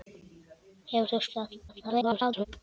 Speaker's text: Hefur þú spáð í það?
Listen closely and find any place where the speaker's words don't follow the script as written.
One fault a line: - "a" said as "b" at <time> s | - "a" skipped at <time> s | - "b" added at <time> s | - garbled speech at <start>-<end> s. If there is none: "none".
- "spáð" skipped at 1.2 s
- garbled speech at 1.7-2.5 s